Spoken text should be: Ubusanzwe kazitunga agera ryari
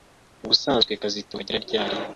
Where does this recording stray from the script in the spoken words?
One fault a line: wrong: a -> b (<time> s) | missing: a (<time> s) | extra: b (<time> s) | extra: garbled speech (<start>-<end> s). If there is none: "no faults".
no faults